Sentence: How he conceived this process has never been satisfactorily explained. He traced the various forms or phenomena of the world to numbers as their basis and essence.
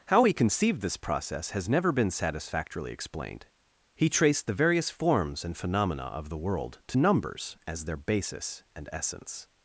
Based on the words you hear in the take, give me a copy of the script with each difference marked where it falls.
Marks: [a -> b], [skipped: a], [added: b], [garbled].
How he conceived this process has never been satisfactorily explained. He traced the various forms [or -> and] phenomena of the world to numbers as their basis and essence.